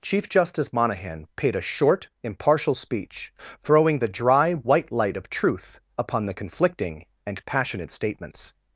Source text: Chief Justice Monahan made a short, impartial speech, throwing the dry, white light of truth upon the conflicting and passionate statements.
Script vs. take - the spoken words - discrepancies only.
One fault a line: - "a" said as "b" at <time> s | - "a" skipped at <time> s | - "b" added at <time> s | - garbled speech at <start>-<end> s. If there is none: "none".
- "made" said as "paid" at 1.4 s